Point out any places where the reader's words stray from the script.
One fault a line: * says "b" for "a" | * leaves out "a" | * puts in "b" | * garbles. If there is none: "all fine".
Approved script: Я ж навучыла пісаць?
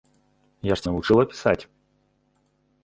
all fine